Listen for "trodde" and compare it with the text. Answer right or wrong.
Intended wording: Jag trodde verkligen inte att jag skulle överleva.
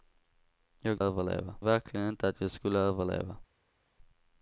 wrong